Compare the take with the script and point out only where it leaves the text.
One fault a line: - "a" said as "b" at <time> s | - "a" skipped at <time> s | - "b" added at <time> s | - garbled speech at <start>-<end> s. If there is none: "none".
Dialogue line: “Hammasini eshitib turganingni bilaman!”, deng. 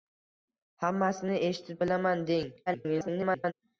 - "turganingni" skipped at 1.8 s
- garbled speech at 2.7-3.5 s